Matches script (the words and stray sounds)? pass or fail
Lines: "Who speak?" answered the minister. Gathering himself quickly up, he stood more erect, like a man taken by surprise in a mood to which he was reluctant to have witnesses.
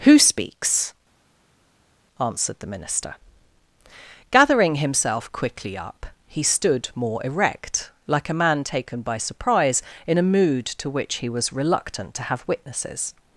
fail